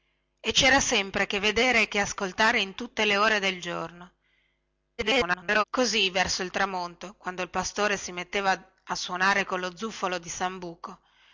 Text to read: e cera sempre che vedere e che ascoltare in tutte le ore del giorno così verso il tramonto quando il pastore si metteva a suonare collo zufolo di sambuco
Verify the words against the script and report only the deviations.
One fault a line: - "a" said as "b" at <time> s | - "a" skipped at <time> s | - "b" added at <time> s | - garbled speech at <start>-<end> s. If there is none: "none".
- garbled speech at 5.0-5.6 s